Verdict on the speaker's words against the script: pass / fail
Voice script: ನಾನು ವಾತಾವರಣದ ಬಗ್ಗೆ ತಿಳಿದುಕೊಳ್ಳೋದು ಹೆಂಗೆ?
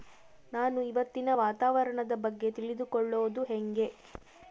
fail